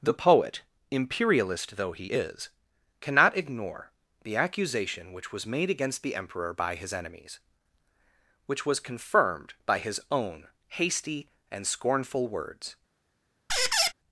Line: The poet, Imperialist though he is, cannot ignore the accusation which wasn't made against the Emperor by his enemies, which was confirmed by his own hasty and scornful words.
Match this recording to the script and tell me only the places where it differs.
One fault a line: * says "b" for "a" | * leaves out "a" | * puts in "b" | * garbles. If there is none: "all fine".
* says "was" for "wasn't"